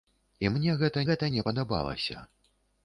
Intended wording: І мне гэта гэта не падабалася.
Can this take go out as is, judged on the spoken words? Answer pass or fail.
pass